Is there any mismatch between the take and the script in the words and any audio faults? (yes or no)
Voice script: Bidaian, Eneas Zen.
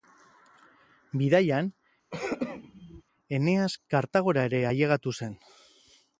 yes